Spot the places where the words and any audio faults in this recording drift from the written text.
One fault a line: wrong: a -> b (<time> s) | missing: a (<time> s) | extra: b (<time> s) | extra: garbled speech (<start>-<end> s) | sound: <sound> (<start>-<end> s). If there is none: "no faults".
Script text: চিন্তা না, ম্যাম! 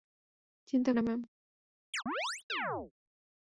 sound: chirp (1.9-2.9 s)